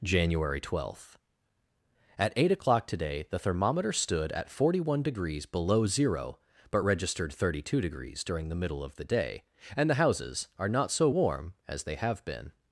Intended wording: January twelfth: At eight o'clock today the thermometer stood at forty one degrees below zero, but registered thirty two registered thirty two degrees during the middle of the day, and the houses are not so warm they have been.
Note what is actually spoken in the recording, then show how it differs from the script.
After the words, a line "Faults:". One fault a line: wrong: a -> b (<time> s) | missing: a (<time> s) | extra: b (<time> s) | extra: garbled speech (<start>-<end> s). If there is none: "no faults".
January twelfth: At eight o'clock today the thermometer stood at forty one degrees below zero, but registered thirty two degrees during the middle of the day, and the houses are not so warm as they have been.
Faults:
missing: registered thirty two (7.8 s)
extra: as (11.7 s)